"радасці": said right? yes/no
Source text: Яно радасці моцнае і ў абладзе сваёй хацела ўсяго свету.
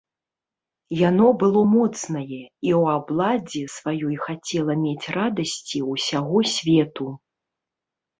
no